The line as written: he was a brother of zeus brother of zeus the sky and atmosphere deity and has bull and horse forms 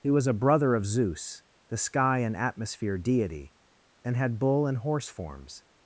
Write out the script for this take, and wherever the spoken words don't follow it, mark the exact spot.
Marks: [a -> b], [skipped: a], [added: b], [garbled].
he was a brother of zeus [skipped: brother of zeus] the sky and atmosphere deity and [has -> had] bull and horse forms